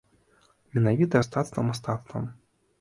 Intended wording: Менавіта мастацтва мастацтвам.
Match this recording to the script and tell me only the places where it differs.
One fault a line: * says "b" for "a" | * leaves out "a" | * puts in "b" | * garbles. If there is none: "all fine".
all fine